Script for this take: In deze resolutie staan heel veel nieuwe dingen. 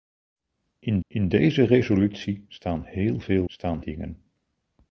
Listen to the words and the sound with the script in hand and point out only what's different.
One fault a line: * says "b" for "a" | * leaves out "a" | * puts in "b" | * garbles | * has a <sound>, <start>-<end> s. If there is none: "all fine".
* puts in "in"
* says "staan" for "nieuwe"